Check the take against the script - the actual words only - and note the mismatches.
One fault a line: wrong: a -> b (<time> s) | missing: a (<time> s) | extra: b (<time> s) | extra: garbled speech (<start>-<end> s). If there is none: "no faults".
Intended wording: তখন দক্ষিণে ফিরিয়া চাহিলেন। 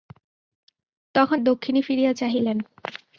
no faults